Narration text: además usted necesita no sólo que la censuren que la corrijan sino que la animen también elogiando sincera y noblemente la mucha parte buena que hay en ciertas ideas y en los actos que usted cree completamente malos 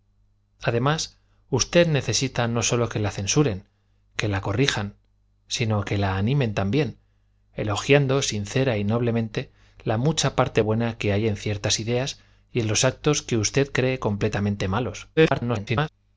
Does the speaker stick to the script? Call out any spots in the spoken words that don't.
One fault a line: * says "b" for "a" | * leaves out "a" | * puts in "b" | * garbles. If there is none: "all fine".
* garbles